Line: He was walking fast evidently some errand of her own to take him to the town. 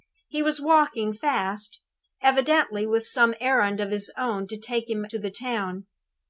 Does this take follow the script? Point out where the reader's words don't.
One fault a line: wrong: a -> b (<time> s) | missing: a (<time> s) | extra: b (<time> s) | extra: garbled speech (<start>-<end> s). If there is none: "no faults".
extra: with (2.9 s)
wrong: her -> his (3.9 s)